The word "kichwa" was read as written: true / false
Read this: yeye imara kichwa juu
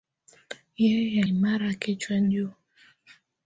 true